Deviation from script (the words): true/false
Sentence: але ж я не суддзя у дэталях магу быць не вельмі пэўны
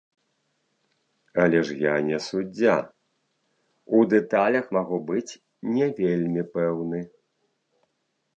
false